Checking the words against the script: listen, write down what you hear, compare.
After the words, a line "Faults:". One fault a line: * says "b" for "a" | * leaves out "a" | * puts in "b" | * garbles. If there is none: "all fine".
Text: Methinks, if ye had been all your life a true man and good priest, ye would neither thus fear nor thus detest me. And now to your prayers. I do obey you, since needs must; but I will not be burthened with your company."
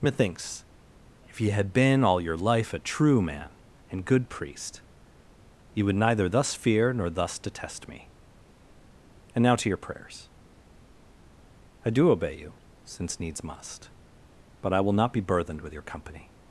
Methinks, if ye had been all your life a true man and good priest, ye would neither thus fear nor thus detest me. And now to your prayers. I do obey you, since needs must; but I will not be burthened with your company."
Faults:
all fine